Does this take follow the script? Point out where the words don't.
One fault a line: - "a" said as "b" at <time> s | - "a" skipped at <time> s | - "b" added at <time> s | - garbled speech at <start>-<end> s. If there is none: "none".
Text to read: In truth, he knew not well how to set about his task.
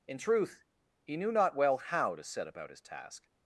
none